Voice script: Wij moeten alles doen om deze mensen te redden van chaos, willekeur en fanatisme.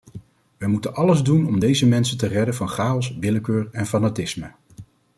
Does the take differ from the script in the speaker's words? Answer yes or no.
no